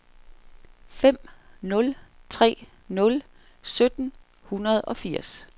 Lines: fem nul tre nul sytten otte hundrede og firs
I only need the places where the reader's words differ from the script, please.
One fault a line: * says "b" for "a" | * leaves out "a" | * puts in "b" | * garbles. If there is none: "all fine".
* leaves out "otte"